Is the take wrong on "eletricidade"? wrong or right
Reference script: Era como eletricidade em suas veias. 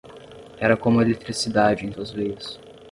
right